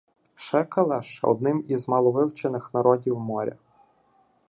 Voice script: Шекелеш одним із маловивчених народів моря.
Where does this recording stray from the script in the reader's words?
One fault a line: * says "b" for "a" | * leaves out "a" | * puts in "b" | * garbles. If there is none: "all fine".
all fine